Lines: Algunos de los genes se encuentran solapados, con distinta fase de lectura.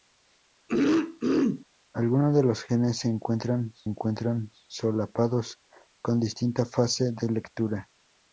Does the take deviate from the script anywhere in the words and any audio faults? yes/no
yes